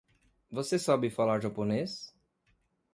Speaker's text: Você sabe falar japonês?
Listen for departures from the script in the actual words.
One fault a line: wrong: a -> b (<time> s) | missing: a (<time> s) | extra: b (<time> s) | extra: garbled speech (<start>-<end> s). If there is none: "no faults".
no faults